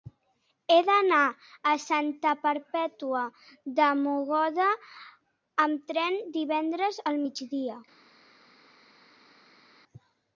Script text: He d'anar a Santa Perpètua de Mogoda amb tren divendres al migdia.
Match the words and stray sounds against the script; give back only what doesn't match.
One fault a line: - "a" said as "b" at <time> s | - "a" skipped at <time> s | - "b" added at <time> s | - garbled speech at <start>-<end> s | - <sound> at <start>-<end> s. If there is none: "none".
none